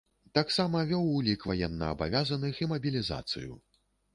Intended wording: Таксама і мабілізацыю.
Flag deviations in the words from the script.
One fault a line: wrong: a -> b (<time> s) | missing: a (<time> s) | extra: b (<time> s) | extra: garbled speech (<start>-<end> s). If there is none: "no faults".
extra: вёў улік ваеннаабавязаных (0.9 s)